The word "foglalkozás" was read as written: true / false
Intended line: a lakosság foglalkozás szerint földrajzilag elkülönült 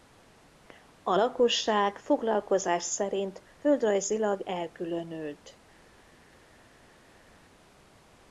true